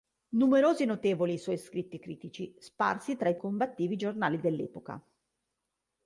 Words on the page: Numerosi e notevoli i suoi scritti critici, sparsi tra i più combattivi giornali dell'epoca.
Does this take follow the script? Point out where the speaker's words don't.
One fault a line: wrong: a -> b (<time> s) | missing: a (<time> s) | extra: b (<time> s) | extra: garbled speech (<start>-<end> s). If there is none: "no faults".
missing: più (3.4 s)